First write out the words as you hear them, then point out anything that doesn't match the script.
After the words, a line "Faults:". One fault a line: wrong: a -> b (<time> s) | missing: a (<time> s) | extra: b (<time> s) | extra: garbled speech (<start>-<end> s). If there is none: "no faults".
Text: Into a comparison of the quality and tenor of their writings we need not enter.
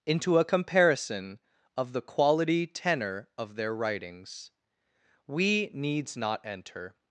Into a comparison of the quality tenor of their writings we needs not enter.
Faults:
missing: and (2.7 s)
wrong: need -> needs (5.7 s)